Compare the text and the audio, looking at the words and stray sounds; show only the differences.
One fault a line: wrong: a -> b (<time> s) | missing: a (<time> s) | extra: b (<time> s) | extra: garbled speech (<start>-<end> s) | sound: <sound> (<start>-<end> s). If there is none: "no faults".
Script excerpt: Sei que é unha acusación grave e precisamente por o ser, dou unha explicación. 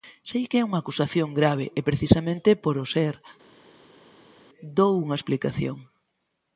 no faults